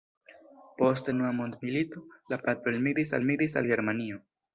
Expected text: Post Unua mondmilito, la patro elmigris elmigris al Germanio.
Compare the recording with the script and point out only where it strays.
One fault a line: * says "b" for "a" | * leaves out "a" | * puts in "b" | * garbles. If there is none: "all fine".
all fine